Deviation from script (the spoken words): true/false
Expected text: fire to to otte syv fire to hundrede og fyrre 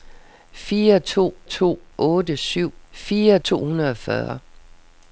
false